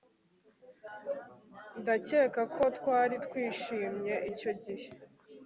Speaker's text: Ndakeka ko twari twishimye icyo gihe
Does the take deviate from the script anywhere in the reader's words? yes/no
no